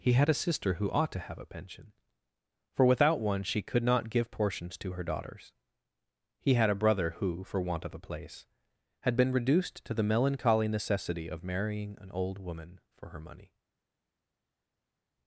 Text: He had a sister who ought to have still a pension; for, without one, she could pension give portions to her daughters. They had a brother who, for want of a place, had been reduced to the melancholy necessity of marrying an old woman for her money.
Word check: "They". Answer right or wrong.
wrong